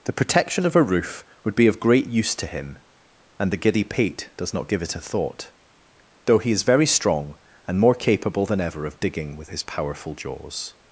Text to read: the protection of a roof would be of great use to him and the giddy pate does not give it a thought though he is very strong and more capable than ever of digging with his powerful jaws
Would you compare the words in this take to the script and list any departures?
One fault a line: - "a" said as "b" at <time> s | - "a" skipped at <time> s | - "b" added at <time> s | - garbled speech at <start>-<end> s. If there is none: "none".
none